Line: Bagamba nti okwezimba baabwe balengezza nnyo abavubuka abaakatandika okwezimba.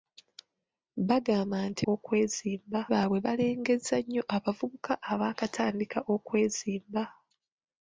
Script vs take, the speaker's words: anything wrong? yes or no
no